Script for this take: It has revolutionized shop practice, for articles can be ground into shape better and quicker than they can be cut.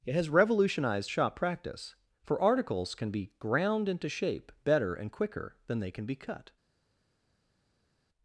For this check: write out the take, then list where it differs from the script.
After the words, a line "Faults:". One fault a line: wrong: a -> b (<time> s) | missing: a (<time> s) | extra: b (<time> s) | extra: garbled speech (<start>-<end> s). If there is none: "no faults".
It has revolutionized shop practice, for articles can be ground into shape better and quicker than they can be cut.
Faults:
no faults